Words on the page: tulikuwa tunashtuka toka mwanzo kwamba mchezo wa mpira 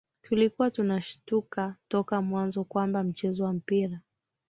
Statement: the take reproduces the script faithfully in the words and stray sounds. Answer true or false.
true